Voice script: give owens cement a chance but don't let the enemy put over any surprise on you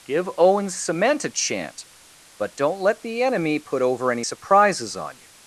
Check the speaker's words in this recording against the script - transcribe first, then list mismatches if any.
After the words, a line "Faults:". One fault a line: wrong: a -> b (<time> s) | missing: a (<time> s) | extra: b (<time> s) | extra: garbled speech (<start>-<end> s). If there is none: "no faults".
give owens cement a chant but don't let the enemy put over any surprises on you
Faults:
wrong: chance -> chant (1.3 s)
wrong: surprise -> surprises (4.2 s)